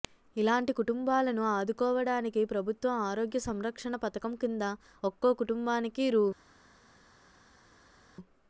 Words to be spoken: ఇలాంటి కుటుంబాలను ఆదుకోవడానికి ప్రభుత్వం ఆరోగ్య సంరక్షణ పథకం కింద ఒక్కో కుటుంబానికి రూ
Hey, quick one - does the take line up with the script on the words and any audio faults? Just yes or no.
yes